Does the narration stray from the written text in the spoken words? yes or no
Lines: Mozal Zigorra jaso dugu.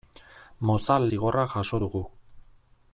no